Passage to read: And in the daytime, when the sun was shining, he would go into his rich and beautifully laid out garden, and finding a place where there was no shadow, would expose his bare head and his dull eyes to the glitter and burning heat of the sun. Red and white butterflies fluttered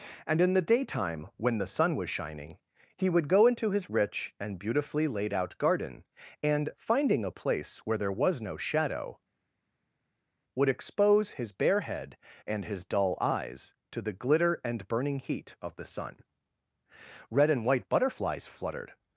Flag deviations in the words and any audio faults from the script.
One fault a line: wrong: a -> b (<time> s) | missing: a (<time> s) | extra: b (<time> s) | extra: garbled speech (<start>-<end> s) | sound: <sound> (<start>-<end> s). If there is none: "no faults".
no faults